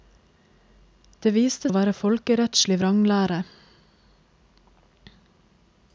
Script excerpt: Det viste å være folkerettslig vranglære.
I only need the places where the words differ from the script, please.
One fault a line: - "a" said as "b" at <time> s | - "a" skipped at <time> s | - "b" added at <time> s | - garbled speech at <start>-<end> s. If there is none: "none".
none